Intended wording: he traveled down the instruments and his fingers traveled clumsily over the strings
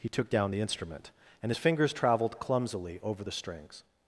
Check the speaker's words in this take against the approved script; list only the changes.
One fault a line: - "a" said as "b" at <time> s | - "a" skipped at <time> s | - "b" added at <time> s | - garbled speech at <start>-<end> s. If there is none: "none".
- "traveled" said as "took" at 0.1 s
- "instruments" said as "instrument" at 0.6 s